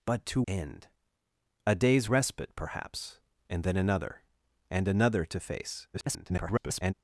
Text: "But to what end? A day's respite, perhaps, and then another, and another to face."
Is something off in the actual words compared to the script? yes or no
yes